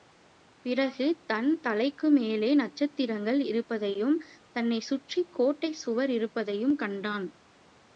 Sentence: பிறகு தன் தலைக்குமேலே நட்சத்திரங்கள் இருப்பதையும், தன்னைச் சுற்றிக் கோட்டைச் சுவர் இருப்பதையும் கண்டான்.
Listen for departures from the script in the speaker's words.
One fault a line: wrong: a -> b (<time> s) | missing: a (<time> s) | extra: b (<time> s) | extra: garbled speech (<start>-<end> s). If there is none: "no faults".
no faults